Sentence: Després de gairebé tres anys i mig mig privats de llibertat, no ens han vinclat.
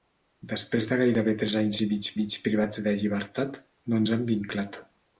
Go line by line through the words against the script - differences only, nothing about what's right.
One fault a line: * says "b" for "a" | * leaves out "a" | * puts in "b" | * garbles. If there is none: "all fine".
all fine